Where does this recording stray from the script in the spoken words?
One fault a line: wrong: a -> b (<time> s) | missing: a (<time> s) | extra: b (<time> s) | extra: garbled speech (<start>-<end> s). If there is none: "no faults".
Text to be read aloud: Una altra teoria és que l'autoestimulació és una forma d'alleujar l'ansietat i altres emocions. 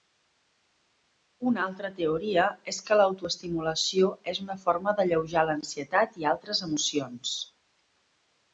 no faults